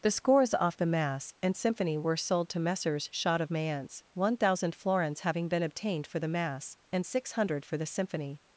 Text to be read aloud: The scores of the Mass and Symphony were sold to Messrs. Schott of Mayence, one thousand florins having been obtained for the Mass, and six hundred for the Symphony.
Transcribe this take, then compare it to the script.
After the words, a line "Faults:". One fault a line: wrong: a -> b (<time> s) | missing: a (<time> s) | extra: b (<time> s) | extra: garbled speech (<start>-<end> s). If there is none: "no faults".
The scores off the Mass and Symphony were sold to Messrs. Schott of Mayence, one thousand florins having been obtained for the Mass, and six hundred for the Symphony.
Faults:
wrong: of -> off (0.6 s)